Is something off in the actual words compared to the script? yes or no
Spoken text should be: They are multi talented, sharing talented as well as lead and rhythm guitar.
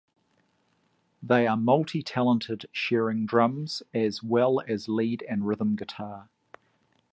yes